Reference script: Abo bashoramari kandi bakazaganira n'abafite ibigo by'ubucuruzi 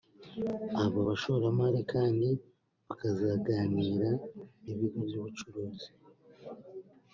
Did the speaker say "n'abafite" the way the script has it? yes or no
no